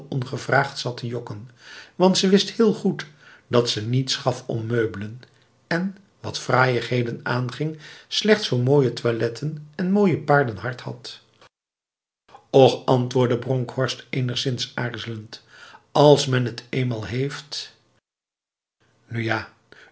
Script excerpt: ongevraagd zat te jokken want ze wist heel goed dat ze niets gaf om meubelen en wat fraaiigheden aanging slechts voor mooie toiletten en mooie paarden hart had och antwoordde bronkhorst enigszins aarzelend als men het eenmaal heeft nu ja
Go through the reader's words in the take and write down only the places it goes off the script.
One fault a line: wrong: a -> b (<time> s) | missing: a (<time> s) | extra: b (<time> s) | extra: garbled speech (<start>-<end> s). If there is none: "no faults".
no faults